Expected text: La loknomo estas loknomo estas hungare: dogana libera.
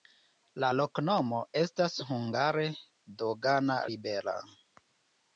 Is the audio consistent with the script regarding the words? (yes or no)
no